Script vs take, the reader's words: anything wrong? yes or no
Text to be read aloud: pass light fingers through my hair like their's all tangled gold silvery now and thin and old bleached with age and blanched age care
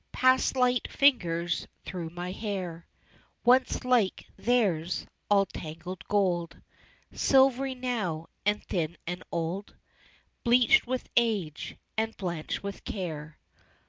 yes